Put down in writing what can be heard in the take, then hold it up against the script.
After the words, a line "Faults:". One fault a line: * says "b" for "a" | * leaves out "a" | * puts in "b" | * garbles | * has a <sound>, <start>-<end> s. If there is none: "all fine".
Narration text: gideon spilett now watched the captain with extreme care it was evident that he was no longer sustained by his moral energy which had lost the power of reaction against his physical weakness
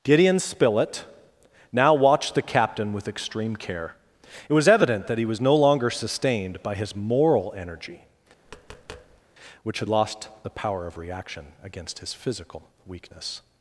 gideon spilett now watched the captain with extreme care it was evident that he was no longer sustained by his moral energy which had lost the power of reaction against his physical weakness
Faults:
* has a tap, 8.5-9.2 s